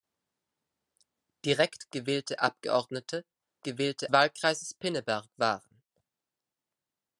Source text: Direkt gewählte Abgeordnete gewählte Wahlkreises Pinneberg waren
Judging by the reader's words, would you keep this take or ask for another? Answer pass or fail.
pass